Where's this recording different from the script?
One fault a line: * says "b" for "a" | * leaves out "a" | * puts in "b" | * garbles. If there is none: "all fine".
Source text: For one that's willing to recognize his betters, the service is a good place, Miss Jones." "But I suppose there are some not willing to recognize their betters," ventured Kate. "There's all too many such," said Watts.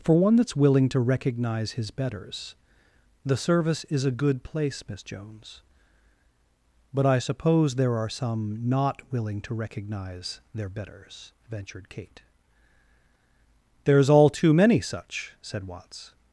all fine